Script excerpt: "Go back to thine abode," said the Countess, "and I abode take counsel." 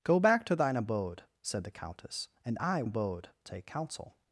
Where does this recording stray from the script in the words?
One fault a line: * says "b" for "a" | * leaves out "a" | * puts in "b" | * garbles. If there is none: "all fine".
all fine